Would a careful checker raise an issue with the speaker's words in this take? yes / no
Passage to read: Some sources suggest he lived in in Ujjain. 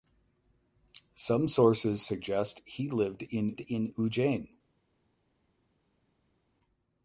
no